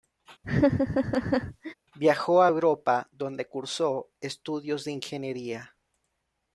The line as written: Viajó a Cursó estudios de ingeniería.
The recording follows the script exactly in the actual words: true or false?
false